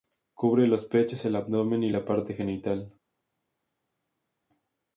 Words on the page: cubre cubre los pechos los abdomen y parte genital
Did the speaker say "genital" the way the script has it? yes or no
yes